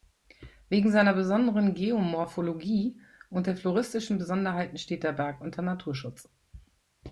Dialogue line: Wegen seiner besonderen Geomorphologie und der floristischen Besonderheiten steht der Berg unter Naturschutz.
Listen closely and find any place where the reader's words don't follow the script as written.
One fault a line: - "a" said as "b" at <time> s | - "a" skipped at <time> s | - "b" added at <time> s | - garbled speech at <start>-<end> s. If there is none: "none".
none